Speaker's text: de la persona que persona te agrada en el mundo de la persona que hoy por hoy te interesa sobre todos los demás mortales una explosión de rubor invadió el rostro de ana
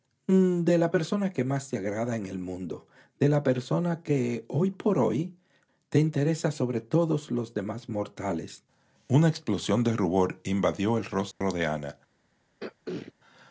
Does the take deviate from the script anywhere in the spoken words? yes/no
yes